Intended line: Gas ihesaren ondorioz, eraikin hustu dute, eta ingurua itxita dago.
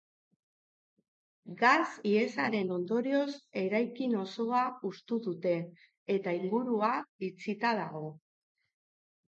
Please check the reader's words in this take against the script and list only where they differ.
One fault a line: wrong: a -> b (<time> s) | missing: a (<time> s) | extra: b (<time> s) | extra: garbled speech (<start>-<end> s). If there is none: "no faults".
extra: osoa (4.3 s)